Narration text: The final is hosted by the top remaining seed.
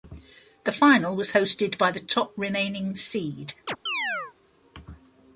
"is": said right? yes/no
no